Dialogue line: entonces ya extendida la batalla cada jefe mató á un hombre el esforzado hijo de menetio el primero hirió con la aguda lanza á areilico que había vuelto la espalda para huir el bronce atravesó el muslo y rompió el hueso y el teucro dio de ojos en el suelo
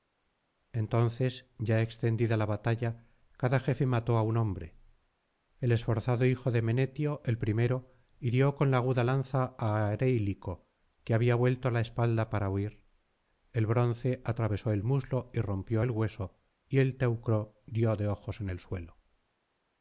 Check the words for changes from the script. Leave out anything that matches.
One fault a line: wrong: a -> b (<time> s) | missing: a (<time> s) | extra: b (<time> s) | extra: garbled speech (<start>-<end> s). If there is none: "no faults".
no faults